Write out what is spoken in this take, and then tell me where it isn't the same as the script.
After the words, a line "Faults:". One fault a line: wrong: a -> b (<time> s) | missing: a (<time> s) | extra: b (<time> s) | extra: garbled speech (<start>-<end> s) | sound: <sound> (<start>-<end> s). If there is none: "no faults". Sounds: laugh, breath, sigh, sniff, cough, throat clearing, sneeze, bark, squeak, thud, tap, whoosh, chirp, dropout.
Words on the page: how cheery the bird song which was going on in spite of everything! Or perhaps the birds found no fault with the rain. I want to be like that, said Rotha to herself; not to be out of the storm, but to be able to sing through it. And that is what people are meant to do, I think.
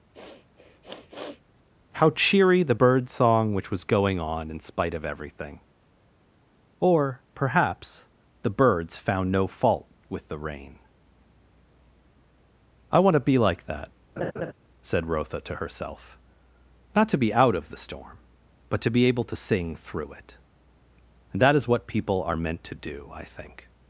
how cheery the bird song which was going on in spite of everything! Or perhaps the birds found no fault with the rain. I want to be like that, said Rotha to herself; not to be out of the storm, but to be able to sing through it. And that is what people are meant to do, I think.
Faults:
sound: sniff (0.1-1.4 s)
sound: laugh (14.2-14.5 s)